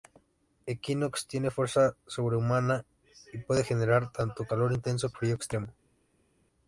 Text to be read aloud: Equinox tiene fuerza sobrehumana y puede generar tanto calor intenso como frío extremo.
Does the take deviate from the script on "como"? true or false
true